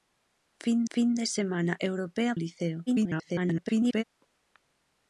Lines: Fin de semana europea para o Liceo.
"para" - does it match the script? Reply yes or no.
no